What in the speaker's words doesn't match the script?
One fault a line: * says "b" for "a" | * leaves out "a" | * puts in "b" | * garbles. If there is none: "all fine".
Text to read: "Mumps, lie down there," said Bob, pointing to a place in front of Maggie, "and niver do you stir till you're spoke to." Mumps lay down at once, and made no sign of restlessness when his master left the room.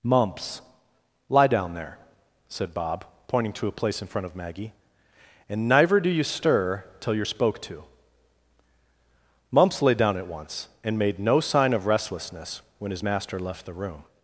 * says "neither" for "niver"